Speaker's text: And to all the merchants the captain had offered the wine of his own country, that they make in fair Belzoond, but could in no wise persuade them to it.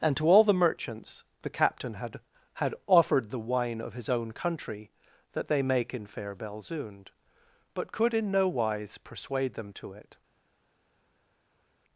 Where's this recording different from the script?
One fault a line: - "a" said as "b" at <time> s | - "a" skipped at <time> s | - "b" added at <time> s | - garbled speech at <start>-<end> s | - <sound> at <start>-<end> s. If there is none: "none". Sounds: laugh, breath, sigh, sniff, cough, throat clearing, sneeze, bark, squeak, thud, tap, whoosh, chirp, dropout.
- "had" added at 2.5 s